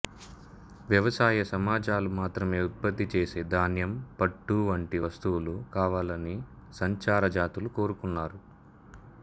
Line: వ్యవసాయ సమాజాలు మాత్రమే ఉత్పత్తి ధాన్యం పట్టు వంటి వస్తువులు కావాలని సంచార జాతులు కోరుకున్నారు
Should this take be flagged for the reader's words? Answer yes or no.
yes